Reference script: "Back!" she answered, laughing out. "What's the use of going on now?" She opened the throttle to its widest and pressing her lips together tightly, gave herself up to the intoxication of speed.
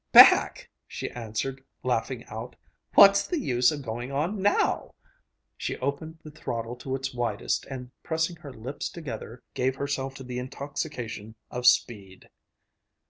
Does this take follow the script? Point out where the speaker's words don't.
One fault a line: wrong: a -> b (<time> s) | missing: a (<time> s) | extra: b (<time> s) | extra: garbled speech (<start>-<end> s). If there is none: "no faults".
missing: tightly (9.4 s)
missing: up (10.2 s)